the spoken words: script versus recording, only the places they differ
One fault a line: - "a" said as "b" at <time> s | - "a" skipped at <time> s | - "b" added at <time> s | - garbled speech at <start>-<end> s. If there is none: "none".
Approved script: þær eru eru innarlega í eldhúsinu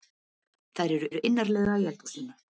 none